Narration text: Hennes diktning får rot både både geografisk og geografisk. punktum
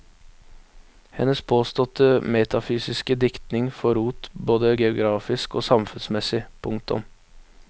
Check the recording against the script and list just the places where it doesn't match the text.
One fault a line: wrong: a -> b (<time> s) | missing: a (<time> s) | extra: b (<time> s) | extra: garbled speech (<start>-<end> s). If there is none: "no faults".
extra: påståtte metafysiske (1.4 s)
missing: både (4.7 s)
wrong: geografisk -> samfunnsmessig (5.6 s)